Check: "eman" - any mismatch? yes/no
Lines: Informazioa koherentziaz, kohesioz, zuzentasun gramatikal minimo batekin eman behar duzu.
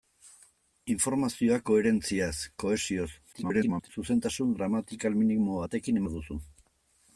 yes